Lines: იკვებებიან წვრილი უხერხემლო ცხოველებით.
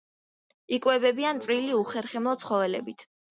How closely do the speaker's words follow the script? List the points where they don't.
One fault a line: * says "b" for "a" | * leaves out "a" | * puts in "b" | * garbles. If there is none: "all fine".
all fine